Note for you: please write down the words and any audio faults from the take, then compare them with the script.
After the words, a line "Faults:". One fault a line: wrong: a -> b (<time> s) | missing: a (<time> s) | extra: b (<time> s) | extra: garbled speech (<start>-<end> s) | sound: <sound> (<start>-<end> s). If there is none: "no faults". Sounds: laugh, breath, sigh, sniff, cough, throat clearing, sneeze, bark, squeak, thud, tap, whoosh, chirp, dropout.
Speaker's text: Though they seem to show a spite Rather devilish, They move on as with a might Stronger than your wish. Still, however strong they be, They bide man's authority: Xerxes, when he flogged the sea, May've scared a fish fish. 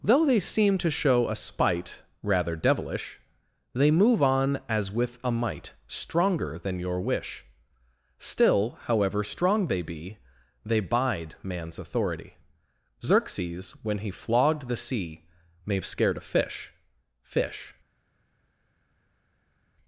Though they seem to show a spite Rather devilish, They move on as with a might Stronger than your wish. Still, however strong they be, They bide man's authority: Xerxes, when he flogged the sea, May've scared a fish fish.
Faults:
no faults